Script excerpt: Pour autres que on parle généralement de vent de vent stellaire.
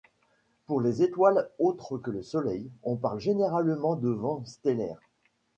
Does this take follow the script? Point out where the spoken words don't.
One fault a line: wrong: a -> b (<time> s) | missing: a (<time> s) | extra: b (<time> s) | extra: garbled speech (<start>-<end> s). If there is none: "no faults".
extra: les étoiles (0.8 s)
extra: le Soleil (2.1 s)
missing: de vent (4.4 s)